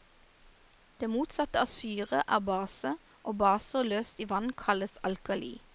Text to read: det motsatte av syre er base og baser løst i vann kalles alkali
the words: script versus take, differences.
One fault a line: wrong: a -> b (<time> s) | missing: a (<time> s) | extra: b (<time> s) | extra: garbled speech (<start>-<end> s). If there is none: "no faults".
no faults